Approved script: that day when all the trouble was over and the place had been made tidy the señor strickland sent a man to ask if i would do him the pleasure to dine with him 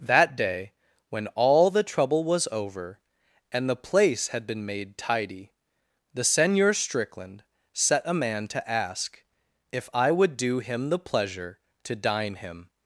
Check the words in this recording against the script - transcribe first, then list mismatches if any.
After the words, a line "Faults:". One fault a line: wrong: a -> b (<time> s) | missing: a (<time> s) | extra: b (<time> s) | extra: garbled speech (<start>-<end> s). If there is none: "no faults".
that day when all the trouble was over and the place had been made tidy the señor strickland set a man to ask if i would do him the pleasure to dine him
Faults:
wrong: sent -> set (7.7 s)
missing: with (12.3 s)